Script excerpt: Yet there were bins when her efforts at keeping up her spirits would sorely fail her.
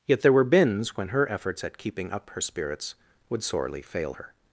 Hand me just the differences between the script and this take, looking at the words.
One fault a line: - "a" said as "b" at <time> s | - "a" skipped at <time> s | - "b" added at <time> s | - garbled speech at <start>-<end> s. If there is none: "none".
none